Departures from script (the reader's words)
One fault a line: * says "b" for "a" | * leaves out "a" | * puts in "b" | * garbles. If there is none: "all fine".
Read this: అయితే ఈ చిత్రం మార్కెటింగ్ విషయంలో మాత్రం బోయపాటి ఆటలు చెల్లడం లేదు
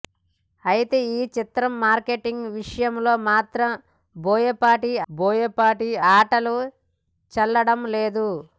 * puts in "బోయపాటి"